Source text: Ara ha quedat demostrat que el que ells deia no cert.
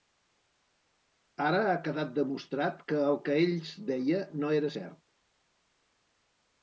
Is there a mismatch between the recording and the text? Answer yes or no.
yes